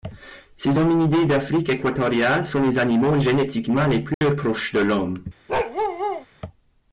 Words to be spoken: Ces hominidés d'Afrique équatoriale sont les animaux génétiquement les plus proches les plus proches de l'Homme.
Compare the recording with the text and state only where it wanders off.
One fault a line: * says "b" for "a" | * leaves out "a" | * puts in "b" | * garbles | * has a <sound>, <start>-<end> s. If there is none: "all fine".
* has a dropout, 4.1-4.2 s
* leaves out "les plus proches"
* has a bark, 5.5-6.3 s